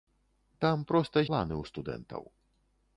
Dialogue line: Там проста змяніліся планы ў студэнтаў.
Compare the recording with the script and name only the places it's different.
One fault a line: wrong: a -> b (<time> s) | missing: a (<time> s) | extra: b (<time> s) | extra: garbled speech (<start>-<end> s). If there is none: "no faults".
missing: змяніліся (1.2 s)